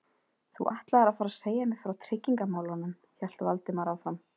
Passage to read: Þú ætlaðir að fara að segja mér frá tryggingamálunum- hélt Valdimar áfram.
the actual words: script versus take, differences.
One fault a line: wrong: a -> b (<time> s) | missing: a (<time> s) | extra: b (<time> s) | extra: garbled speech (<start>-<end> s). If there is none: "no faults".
no faults